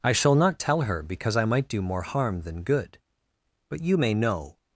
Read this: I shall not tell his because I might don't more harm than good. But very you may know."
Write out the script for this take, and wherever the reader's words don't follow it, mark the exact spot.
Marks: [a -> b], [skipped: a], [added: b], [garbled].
I shall not tell [his -> her] because I might [don't -> do] more harm than good. But [skipped: very] you may know."